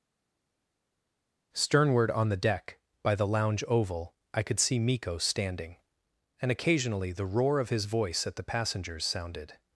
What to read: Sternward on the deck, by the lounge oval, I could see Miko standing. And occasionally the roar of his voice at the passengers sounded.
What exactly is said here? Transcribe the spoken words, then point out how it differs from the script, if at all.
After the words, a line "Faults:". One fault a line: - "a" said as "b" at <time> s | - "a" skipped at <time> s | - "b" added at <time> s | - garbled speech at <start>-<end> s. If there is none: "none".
Sternward on the deck, by the lounge oval, I could see Miko standing. And occasionally the roar of his voice at the passengers sounded.
Faults:
none